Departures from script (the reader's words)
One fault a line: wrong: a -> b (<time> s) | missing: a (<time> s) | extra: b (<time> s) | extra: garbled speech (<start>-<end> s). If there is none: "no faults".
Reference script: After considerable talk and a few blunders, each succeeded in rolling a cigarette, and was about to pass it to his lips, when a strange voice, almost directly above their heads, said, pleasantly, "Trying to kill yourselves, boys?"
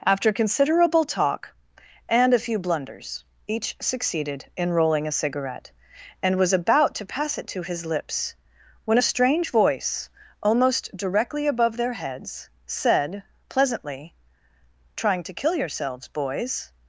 no faults